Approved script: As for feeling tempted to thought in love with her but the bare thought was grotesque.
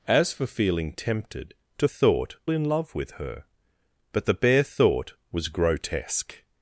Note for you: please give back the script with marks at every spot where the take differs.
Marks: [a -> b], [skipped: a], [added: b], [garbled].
As for feeling tempted to thought in love with her but the bare thought was grotesque.